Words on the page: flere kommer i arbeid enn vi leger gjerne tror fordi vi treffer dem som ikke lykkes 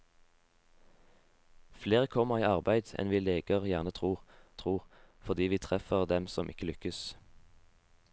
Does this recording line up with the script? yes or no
no